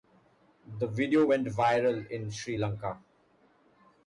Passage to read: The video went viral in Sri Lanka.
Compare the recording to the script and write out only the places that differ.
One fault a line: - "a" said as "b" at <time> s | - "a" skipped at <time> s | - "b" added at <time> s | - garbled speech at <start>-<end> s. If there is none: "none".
none